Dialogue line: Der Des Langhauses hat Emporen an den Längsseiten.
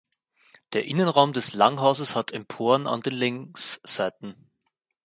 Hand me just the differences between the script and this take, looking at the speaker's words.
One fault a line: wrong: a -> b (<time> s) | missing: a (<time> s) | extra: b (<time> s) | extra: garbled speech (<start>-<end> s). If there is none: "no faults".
extra: Innenraum (0.8 s)